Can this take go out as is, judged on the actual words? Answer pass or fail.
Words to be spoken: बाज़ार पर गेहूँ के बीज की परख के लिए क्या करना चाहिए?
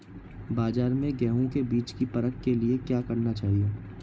fail